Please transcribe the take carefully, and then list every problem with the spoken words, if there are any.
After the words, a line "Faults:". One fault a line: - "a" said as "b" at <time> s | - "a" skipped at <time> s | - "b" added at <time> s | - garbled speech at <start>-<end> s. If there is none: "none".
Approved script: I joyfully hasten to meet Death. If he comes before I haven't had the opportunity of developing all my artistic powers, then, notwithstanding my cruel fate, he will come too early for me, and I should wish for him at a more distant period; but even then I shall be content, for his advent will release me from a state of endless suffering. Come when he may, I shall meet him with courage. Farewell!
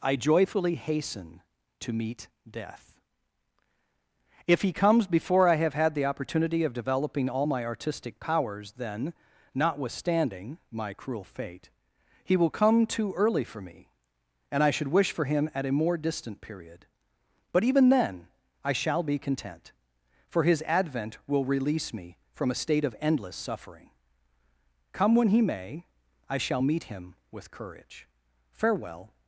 I joyfully hasten to meet Death. If he comes before I have had the opportunity of developing all my artistic powers, then, notwithstanding my cruel fate, he will come too early for me, and I should wish for him at a more distant period; but even then I shall be content, for his advent will release me from a state of endless suffering. Come when he may, I shall meet him with courage. Farewell!
Faults:
- "haven't" said as "have" at 5.5 s